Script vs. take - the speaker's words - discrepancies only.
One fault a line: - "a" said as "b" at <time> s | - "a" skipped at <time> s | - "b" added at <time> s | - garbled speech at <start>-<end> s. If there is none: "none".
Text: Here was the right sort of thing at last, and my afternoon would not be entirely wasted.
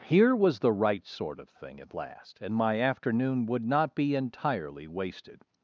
none